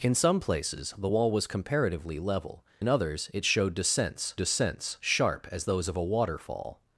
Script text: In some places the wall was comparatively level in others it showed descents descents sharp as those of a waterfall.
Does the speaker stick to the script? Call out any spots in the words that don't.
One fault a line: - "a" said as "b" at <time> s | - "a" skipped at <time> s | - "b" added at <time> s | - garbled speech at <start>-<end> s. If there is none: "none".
none